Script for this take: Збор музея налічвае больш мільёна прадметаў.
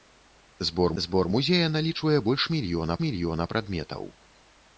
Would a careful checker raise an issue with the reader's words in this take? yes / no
yes